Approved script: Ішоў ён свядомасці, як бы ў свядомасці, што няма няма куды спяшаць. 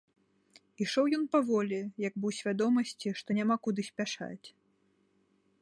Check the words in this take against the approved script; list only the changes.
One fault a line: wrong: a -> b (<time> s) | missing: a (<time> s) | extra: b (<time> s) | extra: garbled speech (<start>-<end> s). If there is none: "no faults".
wrong: свядомасці -> паволі (1.4 s)
missing: няма (3.6 s)